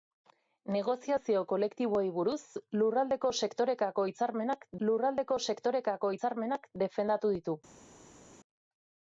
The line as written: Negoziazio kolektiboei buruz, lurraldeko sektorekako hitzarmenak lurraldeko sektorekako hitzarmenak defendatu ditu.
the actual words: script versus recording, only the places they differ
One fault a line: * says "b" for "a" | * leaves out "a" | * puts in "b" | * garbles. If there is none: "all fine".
all fine